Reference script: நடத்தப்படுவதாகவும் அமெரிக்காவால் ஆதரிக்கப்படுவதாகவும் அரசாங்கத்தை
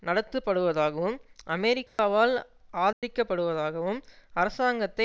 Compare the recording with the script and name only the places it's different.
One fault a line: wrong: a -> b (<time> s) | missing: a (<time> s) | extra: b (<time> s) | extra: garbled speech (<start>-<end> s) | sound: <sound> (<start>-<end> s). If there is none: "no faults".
sound: dropout (1.9-2.0 s)
sound: dropout (2.9-3.0 s)